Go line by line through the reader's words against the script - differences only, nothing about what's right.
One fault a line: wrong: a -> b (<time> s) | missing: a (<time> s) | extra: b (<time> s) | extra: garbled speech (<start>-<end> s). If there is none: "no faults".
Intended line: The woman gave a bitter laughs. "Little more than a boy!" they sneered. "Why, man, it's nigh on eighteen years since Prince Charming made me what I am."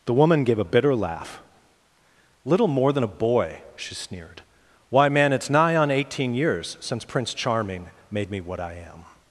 wrong: laughs -> laugh (0.9 s)
wrong: they -> she (3.8 s)